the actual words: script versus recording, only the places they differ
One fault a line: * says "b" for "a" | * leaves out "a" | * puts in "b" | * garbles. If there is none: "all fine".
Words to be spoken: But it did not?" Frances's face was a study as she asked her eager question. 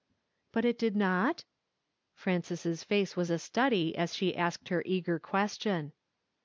all fine